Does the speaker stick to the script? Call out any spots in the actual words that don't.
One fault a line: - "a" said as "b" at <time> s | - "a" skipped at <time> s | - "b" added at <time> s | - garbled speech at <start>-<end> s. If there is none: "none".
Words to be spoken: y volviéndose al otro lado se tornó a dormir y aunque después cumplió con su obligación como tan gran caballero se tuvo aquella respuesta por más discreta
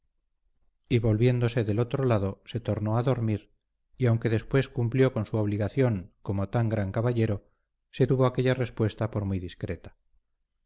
- "al" said as "del" at 1.6 s
- "más" said as "muy" at 9.2 s